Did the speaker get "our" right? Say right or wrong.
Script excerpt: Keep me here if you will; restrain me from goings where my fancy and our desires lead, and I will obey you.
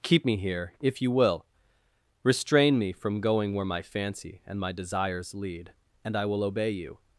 wrong